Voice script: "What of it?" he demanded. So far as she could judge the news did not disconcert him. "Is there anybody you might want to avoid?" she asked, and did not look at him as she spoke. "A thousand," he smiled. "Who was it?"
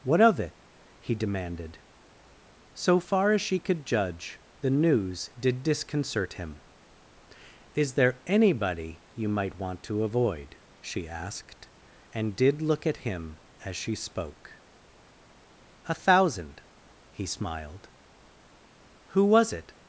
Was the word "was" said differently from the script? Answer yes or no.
no